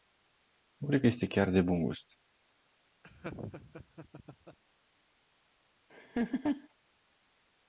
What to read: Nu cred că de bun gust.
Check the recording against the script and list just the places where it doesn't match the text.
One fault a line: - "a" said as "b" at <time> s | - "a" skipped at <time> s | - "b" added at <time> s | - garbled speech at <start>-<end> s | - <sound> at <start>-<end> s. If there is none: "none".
- "este chiar" added at 1.0 s
- laugh at 3.0-4.6 s
- laugh at 5.9-6.7 s